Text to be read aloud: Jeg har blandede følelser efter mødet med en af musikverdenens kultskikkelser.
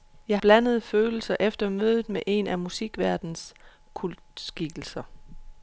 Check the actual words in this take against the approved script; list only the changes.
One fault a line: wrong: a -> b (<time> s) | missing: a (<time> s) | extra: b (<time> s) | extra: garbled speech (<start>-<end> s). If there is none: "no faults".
missing: har (0.4 s)